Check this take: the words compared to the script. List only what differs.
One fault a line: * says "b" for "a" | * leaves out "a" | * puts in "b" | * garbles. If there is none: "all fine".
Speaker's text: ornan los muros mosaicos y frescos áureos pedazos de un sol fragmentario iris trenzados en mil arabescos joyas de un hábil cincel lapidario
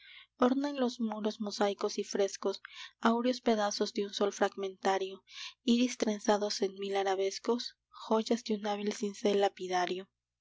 all fine